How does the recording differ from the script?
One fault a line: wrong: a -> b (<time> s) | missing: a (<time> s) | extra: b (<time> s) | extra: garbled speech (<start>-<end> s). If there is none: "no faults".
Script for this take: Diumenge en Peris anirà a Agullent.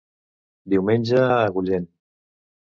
missing: en Peris anirà (1.2 s)